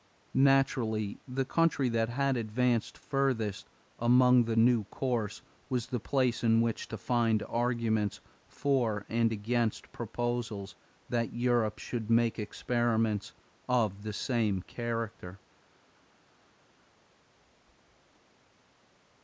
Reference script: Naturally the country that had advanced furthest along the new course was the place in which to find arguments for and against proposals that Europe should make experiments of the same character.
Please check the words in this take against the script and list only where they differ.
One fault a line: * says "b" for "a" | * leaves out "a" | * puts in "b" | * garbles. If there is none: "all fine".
all fine